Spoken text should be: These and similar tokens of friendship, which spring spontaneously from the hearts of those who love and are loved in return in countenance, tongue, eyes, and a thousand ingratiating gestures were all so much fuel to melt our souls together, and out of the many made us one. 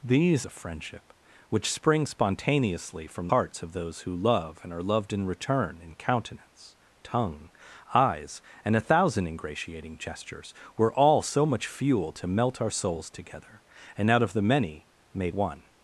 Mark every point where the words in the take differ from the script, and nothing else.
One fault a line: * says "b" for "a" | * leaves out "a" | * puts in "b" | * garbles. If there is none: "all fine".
* leaves out "and similar tokens"
* leaves out "the"
* leaves out "us"